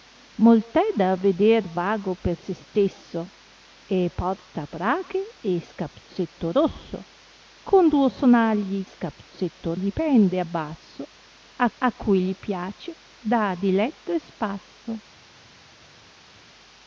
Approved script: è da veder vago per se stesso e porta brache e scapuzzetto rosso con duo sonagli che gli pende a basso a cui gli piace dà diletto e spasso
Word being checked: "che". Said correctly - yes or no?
no